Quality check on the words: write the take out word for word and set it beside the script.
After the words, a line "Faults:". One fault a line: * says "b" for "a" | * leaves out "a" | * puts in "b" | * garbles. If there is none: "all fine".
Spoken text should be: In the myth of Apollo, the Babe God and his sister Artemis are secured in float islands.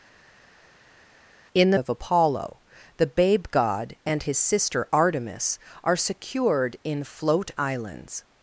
In the of Apollo, the Babe God and his sister Artemis are secured in float islands.
Faults:
* leaves out "myth"